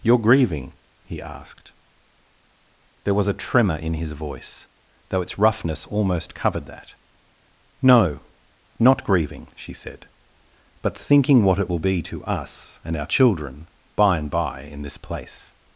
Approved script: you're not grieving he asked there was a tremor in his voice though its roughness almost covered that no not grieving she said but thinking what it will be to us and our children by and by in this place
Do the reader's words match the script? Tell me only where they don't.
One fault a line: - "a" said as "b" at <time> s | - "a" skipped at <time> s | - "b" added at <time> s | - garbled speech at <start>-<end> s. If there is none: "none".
- "not" skipped at 0.2 s